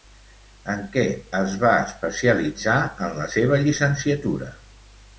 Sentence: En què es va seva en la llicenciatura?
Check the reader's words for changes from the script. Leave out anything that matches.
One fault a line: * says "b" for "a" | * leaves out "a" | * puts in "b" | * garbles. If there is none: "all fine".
* says "especialitzar" for "seva"
* puts in "seva"